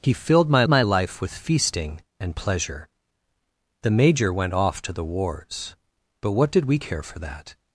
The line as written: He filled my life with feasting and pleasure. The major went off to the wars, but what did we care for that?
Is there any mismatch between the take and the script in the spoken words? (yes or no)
yes